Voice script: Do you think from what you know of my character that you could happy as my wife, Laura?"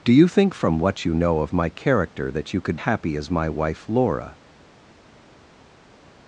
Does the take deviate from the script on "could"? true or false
false